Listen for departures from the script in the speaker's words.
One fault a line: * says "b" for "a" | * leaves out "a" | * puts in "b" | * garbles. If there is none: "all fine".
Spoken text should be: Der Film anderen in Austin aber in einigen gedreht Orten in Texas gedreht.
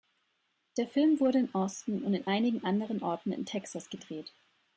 * says "wurde" for "anderen"
* says "und" for "aber"
* says "anderen" for "gedreht"